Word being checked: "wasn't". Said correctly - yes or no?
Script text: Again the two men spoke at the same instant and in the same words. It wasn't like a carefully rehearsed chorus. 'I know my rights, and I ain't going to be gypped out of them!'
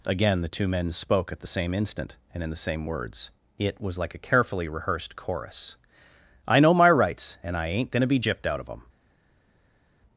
no